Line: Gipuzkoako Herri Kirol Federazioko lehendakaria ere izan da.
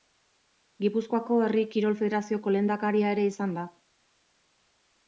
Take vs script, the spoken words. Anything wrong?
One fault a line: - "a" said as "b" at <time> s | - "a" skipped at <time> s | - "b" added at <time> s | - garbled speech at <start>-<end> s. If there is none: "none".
none